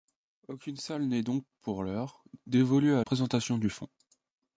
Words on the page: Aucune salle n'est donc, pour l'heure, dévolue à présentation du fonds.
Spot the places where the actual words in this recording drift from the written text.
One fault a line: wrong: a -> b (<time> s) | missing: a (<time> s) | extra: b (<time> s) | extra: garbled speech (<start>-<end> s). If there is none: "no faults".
no faults